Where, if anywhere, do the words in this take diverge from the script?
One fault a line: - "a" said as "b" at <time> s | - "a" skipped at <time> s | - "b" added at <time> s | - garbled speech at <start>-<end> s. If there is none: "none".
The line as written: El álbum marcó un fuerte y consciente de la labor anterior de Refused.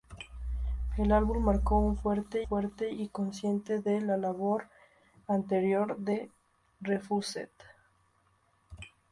- "fuerte" added at 2.4 s